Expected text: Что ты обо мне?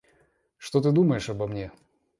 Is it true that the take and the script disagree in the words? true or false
true